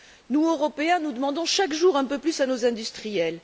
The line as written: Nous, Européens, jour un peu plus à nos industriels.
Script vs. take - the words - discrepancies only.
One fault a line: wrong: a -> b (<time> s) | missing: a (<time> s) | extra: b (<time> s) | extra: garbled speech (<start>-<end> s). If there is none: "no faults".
extra: nous demandons chaque (1.0 s)